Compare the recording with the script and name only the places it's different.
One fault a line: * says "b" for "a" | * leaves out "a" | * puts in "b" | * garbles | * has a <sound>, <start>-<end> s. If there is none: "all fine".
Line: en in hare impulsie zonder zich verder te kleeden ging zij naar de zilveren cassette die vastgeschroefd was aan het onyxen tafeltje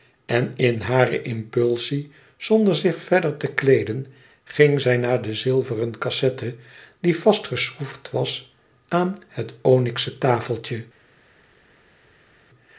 all fine